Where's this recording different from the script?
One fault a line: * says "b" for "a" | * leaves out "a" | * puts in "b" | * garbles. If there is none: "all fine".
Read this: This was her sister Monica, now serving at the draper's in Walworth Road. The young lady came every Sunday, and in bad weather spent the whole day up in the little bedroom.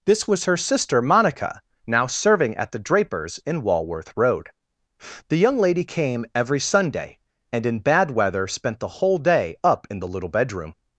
all fine